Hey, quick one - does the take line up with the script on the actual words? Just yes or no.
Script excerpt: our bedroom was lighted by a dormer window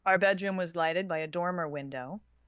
yes